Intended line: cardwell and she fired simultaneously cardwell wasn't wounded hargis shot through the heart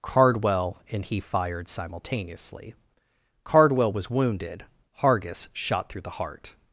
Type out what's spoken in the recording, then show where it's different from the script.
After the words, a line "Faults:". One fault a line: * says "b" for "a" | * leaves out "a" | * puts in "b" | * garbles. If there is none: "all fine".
cardwell and he fired simultaneously cardwell was wounded hargis shot through the heart
Faults:
* says "he" for "she"
* says "was" for "wasn't"